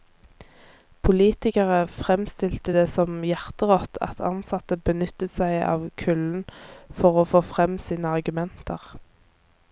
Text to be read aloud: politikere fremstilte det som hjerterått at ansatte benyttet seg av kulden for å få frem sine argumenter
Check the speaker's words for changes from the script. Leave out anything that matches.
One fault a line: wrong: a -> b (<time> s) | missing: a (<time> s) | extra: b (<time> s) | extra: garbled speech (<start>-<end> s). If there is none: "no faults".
no faults